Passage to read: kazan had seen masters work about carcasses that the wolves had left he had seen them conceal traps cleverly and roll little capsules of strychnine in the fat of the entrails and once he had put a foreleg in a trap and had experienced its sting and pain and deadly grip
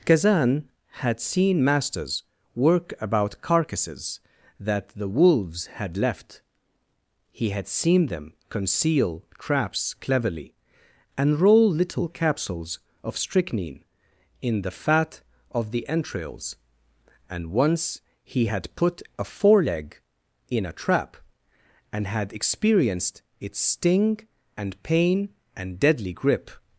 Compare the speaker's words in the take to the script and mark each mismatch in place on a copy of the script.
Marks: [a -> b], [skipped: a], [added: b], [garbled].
kazan had seen masters work about carcasses that the wolves had left he had seen them conceal traps cleverly and roll little capsules of strychnine in the fat of the entrails and once he had put a foreleg in a trap and had experienced its sting and pain and deadly grip